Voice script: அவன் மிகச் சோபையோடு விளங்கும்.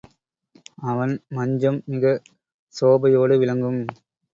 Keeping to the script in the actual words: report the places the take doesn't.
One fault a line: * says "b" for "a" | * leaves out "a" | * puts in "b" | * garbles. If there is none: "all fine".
* puts in "மஞ்சம்"